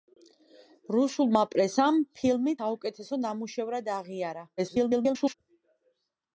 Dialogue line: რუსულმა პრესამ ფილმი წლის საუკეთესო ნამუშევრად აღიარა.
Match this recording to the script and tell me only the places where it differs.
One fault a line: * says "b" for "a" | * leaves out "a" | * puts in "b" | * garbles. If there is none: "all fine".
* leaves out "წლის"
* garbles